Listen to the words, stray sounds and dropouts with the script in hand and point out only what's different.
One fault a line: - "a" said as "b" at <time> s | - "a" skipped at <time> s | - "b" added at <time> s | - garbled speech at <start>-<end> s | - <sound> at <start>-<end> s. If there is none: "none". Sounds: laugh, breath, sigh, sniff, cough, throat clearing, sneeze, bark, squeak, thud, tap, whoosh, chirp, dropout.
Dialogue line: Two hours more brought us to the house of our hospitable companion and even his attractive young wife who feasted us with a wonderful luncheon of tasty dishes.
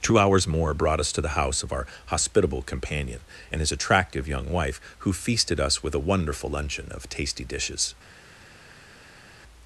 - "even" skipped at 3.6 s